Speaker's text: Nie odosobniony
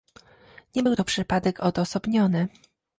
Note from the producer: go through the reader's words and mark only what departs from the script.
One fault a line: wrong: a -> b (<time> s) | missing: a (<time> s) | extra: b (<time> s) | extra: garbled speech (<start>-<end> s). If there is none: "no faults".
extra: był to przypadek (0.8 s)